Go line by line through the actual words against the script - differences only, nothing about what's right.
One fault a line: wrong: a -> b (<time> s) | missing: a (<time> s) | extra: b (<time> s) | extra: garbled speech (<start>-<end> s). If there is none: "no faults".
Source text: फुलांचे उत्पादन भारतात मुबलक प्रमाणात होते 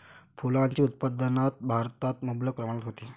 no faults